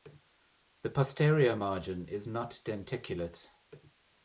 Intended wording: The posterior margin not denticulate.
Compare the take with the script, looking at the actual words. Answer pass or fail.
fail